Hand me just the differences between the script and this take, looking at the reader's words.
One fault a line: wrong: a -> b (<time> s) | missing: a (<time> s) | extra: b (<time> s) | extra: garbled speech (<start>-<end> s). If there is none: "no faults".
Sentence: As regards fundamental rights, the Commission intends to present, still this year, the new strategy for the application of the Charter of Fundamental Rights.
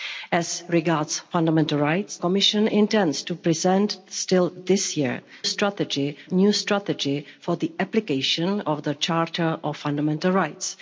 missing: the (2.2 s)
wrong: the -> strategy (5.4 s)